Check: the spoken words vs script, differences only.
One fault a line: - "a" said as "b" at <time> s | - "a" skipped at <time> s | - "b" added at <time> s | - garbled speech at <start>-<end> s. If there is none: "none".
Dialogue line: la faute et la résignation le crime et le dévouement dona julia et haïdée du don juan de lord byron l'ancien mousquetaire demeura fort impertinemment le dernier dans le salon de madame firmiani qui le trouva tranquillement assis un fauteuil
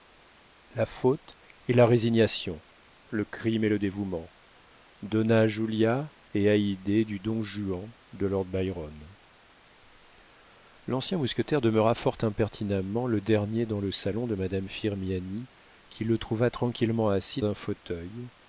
none